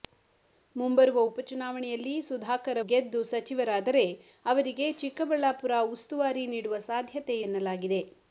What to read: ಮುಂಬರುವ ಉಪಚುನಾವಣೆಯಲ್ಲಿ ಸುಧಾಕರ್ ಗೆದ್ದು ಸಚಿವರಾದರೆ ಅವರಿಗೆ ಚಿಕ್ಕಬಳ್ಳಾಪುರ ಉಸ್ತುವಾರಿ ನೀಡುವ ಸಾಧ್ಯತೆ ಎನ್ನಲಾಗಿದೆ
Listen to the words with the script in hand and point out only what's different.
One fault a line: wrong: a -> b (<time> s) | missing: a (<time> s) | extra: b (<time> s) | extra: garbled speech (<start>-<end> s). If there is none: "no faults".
no faults